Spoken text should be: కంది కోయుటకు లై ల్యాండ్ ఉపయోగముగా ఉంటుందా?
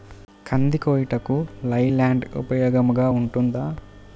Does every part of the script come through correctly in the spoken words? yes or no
yes